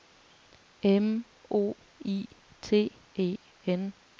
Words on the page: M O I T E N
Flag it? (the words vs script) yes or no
no